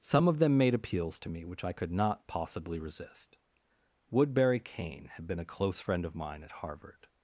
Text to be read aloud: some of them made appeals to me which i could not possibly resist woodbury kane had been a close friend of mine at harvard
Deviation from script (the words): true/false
false